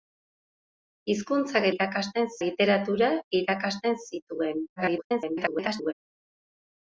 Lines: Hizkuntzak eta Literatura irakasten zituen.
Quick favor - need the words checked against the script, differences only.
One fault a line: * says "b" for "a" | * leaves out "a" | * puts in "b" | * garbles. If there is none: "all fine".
* says "irakasten" for "eta"
* garbles